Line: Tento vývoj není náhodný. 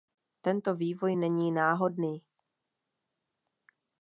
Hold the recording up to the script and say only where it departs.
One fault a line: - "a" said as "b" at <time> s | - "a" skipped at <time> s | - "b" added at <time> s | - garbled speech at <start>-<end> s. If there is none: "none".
none